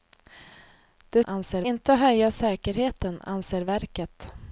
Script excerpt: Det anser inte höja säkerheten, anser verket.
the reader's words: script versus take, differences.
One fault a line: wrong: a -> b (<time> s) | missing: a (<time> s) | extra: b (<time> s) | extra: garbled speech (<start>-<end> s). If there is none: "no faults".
no faults